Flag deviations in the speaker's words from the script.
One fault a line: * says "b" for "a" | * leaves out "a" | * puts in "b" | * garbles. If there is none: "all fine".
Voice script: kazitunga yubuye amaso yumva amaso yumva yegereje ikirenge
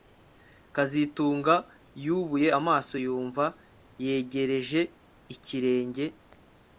* leaves out "amaso yumva"